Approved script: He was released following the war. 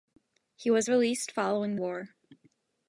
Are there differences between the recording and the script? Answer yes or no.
yes